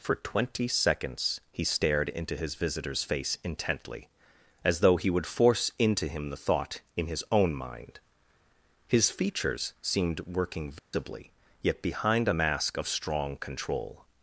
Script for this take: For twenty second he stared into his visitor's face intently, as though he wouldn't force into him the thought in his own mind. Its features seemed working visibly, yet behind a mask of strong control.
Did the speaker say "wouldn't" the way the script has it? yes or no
no